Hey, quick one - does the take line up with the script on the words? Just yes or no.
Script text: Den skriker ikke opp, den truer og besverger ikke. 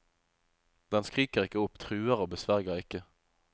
no